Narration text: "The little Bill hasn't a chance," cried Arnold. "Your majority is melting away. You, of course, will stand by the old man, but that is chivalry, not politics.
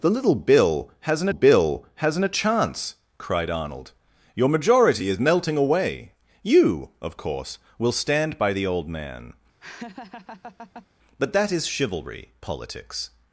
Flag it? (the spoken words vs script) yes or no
yes